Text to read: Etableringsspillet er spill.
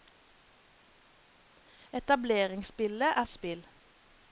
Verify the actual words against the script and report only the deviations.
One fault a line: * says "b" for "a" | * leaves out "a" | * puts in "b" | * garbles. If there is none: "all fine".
all fine